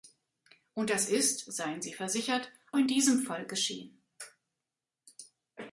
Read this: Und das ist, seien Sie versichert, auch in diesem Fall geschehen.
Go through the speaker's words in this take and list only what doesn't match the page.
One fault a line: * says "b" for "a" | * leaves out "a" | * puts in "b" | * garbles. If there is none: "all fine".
* leaves out "auch"